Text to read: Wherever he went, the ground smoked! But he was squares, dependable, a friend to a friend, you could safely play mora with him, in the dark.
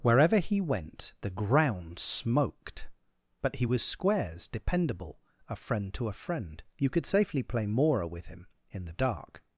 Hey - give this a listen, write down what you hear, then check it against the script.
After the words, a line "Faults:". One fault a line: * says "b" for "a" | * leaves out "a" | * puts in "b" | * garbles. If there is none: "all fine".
Wherever he went, the ground smoked! But he was squares, dependable, a friend to a friend, you could safely play mora with him, in the dark.
Faults:
all fine